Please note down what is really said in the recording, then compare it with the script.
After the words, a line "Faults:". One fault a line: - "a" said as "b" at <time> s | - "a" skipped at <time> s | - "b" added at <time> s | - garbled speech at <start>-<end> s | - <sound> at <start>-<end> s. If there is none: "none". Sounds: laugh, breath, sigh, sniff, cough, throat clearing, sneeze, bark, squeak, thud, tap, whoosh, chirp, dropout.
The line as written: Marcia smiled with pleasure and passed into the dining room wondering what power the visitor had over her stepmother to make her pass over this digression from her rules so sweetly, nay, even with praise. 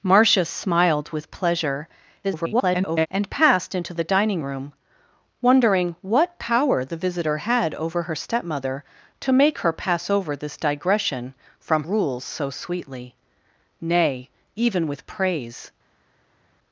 Marcia smiled with pleasure [garbled] and passed into the dining room wondering what power the visitor had over her stepmother to make her pass over this digression from rules so sweetly, nay, even with praise.
Faults:
- garbled speech at 2.2-3.1 s
- "her" skipped at 11.8 s